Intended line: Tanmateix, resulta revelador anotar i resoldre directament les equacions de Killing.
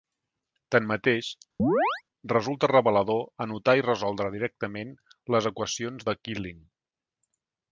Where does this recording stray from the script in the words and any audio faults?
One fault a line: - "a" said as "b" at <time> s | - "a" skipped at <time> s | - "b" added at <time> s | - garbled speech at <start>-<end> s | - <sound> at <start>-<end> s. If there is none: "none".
- chirp at 1.6-2.0 s